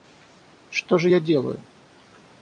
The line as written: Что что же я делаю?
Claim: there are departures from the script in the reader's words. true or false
true